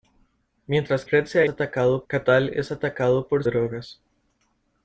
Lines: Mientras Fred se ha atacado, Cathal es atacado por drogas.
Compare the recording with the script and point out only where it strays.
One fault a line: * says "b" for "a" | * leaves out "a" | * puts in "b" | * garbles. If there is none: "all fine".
all fine